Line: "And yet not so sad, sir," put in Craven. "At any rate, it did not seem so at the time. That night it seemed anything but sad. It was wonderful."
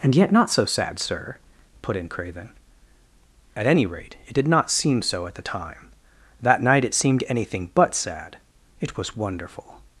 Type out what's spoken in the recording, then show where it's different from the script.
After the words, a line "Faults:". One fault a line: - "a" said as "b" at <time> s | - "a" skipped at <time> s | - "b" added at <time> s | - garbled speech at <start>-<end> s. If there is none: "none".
"And yet not so sad, sir," put in Craven. "At any rate, it did not seem so at the time. That night it seemed anything but sad. It was wonderful."
Faults:
none